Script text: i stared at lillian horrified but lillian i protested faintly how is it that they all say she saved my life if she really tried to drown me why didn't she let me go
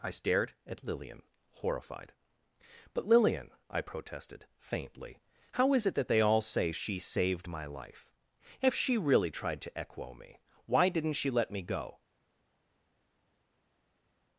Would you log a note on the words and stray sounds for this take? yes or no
yes